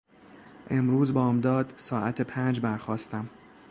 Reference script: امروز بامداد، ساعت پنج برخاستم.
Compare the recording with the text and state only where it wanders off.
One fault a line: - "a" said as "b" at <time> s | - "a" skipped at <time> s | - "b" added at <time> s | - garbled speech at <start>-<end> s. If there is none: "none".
none